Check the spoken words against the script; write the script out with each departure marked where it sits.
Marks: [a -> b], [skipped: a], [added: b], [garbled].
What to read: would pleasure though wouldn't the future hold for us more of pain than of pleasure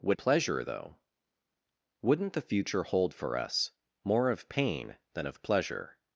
would pleasure though wouldn't the future hold for us more of pain than of pleasure